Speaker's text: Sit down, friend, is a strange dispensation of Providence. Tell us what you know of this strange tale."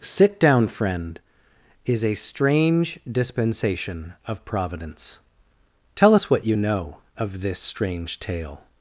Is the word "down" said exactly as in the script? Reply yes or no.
yes